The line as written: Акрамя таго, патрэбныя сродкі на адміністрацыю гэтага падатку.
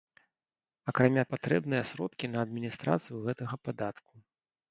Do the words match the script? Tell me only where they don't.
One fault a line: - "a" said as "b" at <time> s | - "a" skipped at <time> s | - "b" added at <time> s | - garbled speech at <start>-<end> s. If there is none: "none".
- "таго" skipped at 1.2 s